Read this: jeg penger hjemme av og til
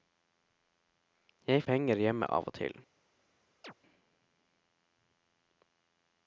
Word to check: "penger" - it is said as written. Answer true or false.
true